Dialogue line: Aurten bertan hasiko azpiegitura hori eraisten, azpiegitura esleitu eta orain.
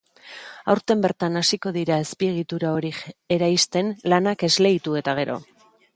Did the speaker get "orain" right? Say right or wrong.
wrong